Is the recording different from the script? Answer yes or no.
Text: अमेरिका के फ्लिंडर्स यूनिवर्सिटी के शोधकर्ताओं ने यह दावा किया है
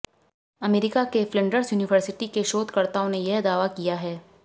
no